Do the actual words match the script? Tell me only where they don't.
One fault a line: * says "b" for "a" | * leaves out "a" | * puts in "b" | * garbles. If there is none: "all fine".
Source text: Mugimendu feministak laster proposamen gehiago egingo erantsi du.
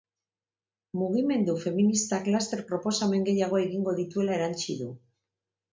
* puts in "dituela"